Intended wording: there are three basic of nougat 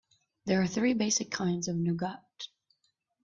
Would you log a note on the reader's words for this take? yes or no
yes